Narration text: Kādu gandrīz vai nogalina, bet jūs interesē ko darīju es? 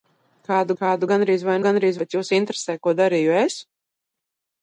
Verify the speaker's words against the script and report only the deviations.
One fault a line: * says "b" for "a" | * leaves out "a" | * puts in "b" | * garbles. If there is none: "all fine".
* puts in "kādu"
* says "gandrīz" for "nogalina"